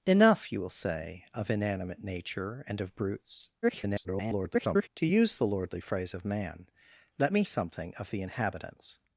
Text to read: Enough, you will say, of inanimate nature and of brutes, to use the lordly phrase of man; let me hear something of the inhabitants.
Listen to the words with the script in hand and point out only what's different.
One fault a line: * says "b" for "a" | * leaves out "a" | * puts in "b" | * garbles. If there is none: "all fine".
* garbles
* leaves out "hear"